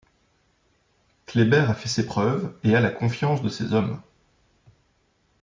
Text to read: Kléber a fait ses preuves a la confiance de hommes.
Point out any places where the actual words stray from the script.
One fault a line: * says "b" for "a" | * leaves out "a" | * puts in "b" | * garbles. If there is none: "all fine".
* puts in "et"
* puts in "ses"